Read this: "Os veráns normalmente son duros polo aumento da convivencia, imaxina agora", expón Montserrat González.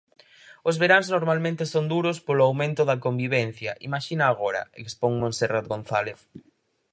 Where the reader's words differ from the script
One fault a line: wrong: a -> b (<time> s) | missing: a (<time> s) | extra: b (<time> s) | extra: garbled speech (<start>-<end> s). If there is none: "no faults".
no faults